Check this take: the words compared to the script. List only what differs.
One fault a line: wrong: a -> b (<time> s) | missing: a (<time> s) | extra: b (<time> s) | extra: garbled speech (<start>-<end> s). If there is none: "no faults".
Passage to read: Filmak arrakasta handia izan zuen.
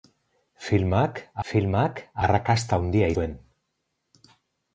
extra: filmak (1.5 s)
missing: izan (3.1 s)